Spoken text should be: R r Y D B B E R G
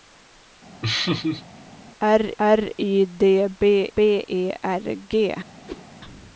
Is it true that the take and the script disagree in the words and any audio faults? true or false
true